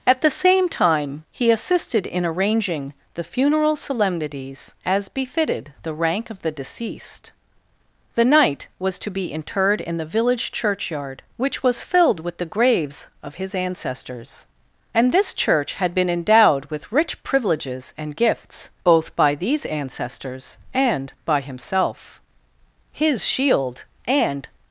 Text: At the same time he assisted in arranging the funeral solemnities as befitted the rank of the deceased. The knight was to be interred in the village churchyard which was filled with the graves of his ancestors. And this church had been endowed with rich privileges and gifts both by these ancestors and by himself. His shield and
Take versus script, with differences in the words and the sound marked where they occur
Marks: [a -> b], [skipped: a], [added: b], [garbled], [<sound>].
At the same time he assisted in arranging the funeral solemnities as befitted the rank of the deceased. The knight was to be interred in the village churchyard which was filled with the graves of his ancestors. And this church had been endowed with rich privileges and gifts both by these ancestors and by himself. His shield and